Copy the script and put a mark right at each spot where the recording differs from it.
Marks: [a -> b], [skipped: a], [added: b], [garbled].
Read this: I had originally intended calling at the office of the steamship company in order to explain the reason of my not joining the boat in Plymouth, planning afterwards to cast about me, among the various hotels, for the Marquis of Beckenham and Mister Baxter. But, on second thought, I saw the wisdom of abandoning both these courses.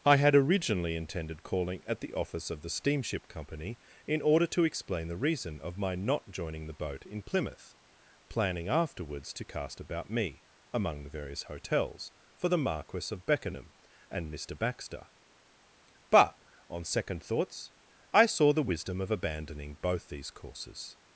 I had originally intended calling at the office of the steamship company in order to explain the reason of my not joining the boat in Plymouth, planning afterwards to cast about me, among the various hotels, for the Marquis of Beckenham and Mister Baxter. But, on second [thought, -> thoughts] I saw the wisdom of abandoning both these courses.